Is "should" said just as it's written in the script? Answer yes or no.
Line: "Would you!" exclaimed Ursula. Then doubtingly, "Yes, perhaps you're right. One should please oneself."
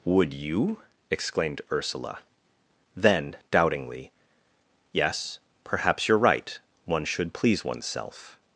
yes